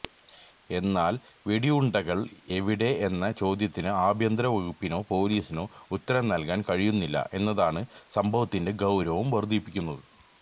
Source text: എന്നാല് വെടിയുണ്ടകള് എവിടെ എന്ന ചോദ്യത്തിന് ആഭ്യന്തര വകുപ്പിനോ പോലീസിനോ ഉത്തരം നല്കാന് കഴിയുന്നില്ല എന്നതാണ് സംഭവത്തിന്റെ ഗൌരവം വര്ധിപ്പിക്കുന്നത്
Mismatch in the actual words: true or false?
false